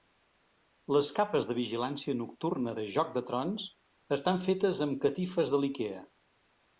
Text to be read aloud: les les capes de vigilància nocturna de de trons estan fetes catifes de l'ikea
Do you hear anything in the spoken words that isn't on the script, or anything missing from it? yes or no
yes